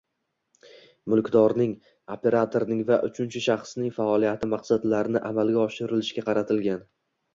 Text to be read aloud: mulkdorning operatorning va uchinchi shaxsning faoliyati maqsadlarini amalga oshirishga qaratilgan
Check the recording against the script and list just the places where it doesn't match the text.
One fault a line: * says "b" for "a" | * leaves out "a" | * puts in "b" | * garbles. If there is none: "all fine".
all fine